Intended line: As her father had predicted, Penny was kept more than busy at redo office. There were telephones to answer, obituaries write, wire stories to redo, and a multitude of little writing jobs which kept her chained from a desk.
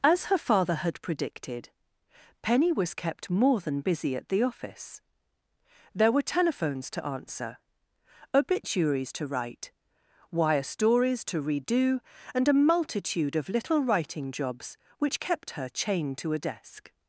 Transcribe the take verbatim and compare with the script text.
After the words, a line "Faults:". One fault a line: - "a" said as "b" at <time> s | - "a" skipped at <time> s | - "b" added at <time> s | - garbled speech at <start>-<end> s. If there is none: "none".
As her father had predicted, Penny was kept more than busy at the office. There were telephones to answer, obituaries to write, wire stories to redo, and a multitude of little writing jobs which kept her chained to a desk.
Faults:
- "redo" said as "the" at 4.3 s
- "to" added at 9.1 s
- "from" said as "to" at 16.2 s